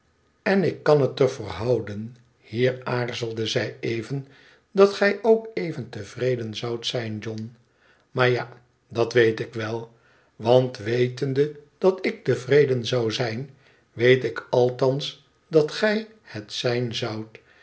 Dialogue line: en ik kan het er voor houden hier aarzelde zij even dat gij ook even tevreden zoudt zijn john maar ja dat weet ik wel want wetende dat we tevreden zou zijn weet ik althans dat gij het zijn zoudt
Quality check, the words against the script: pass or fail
fail